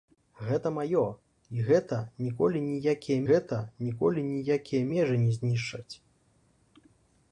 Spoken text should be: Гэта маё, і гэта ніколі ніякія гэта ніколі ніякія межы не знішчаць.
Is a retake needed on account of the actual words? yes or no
no